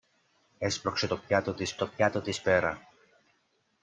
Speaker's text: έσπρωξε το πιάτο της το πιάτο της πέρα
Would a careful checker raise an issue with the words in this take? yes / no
no